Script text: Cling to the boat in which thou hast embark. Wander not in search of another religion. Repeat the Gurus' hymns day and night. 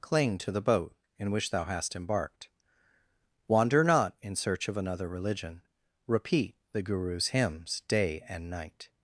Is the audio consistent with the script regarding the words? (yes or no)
no